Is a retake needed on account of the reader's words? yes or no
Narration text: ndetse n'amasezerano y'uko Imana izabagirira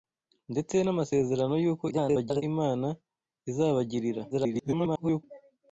yes